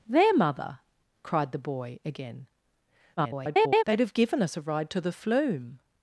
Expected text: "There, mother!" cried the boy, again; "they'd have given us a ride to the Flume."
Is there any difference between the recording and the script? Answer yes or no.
yes